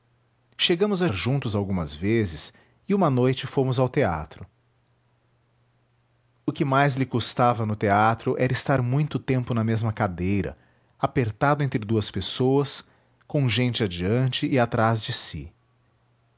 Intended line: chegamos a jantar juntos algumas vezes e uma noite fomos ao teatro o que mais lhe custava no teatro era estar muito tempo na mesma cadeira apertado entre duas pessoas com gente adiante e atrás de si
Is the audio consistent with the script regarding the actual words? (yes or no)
no